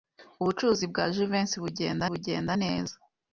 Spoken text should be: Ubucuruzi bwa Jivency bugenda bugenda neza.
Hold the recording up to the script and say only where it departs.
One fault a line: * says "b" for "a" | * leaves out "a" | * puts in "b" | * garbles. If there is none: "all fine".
all fine